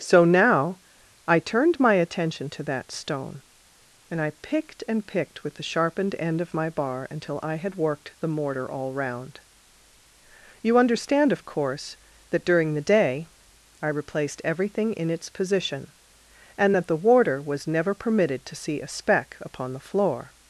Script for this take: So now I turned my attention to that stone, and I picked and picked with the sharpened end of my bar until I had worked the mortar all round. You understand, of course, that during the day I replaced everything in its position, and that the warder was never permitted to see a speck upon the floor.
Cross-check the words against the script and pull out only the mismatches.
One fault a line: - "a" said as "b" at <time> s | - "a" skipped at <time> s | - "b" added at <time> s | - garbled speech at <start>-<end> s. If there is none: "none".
none